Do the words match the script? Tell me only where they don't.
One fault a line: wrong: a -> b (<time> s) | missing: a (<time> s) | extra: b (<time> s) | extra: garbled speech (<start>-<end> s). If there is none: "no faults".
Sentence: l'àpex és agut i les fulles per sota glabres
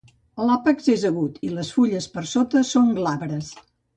extra: són (2.7 s)